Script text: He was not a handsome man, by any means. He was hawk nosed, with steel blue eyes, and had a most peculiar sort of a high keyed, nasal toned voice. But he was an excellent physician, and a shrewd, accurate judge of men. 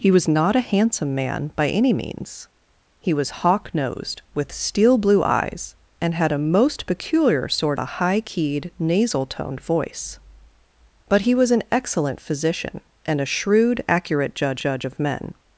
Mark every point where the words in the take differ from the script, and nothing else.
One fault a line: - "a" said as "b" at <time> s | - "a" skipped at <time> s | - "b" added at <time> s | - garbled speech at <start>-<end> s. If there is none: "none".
- "of" skipped at 7.8 s
- "judge" added at 14.6 s